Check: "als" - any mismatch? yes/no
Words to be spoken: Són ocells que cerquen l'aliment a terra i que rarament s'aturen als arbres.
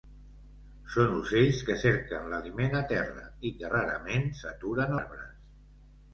yes